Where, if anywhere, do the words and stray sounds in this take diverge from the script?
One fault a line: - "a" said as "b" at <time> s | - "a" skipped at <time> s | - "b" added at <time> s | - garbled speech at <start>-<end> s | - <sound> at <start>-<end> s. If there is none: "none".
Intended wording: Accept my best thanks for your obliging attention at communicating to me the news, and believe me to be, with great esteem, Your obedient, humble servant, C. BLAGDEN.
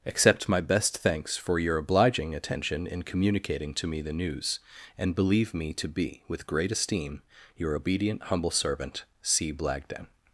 - "at" said as "in" at 2.9 s